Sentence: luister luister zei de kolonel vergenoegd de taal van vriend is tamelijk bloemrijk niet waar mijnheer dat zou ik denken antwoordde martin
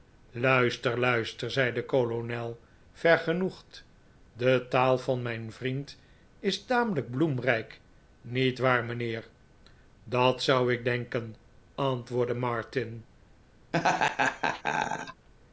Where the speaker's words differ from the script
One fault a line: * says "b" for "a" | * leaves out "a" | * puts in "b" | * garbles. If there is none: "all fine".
* puts in "mijn"